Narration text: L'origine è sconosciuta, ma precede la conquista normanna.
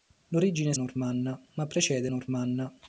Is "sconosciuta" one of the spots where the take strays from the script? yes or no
yes